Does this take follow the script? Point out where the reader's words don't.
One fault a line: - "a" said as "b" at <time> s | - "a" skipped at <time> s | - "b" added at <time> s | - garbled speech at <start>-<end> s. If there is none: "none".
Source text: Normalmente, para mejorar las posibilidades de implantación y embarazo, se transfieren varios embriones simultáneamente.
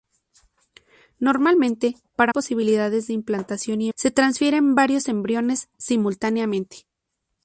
- "mejorar las" skipped at 2.3 s
- "embarazo" skipped at 3.9 s